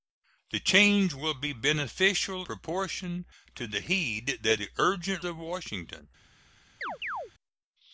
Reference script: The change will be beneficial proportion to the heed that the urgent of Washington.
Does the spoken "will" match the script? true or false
true